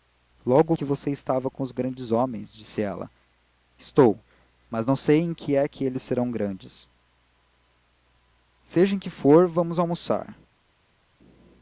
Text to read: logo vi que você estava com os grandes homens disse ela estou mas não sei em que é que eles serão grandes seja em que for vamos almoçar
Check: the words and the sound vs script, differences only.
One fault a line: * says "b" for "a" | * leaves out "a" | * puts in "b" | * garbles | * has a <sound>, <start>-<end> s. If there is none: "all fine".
* leaves out "vi"